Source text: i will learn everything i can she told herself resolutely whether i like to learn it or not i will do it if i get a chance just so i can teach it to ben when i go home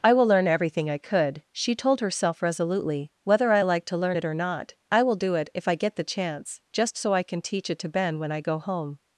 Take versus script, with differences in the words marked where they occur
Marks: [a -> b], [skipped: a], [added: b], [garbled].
i will learn everything i [can -> could] she told herself resolutely whether i like to learn it or not i will do it if i get [a -> the] chance just so i can teach it to ben when i go home